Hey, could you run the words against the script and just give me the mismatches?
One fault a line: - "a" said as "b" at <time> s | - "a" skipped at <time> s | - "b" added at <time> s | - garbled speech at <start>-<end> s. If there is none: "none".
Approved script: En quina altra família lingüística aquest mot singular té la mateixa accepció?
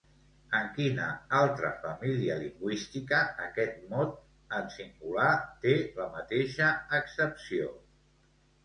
- "en" added at 4.6 s